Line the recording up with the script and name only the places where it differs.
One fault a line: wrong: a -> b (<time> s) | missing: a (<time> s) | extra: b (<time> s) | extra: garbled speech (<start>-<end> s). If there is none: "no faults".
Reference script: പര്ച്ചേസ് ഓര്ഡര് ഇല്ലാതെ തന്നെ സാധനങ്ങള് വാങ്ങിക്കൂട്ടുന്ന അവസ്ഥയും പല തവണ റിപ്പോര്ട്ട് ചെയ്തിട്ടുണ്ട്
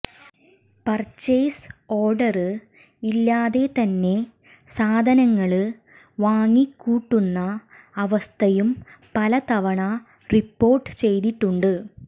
no faults